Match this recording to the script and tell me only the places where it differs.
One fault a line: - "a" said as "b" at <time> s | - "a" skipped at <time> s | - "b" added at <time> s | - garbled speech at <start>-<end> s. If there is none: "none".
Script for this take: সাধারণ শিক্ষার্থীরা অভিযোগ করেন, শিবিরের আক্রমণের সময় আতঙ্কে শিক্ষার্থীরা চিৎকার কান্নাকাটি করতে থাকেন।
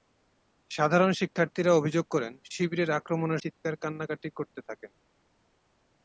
- "সময় আতঙ্কে শিক্ষার্থীরা" skipped at 3.4 s